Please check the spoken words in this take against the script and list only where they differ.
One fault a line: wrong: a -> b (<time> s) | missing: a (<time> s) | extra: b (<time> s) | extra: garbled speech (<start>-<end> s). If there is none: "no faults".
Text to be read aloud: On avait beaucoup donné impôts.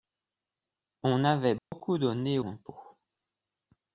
no faults